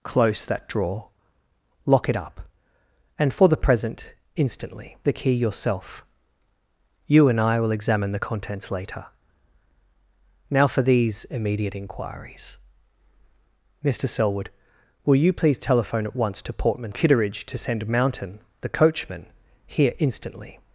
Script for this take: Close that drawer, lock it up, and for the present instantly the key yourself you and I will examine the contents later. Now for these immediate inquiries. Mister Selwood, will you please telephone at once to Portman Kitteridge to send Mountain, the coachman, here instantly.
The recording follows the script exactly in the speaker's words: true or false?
true